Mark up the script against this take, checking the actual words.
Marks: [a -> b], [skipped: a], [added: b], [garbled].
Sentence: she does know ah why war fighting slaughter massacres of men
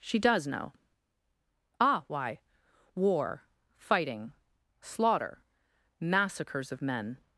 she does know ah why war fighting slaughter massacres of men